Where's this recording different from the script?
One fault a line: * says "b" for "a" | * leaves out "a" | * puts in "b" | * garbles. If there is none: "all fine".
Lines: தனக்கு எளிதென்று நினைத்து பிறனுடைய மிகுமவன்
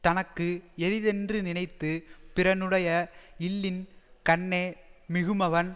* puts in "இல்லின் கண்ணே"